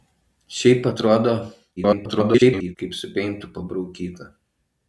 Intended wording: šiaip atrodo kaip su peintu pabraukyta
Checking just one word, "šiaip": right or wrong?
right